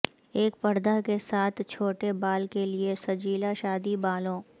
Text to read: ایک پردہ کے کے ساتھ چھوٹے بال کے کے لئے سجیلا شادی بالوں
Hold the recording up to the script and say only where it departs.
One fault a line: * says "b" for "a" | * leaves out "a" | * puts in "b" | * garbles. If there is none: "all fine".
* leaves out "کے"
* leaves out "کے"